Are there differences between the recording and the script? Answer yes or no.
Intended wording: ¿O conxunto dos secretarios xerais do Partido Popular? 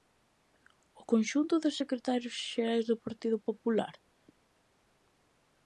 no